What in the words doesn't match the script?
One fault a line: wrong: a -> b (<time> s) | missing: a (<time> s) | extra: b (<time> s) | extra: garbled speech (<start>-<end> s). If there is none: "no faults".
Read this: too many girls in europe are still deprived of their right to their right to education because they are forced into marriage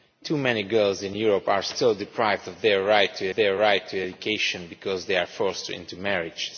no faults